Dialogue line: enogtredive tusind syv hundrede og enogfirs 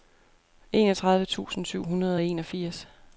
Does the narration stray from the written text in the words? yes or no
no